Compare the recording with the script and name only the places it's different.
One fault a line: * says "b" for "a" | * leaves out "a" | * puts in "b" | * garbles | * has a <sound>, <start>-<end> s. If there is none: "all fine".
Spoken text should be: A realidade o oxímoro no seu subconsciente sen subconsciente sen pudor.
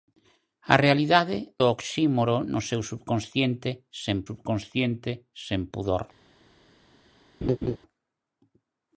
* has a laugh, 7.4-7.8 s